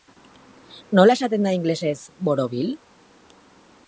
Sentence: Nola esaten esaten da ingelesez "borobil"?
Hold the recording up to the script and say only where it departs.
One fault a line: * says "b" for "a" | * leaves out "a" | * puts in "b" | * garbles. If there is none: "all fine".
* leaves out "esaten"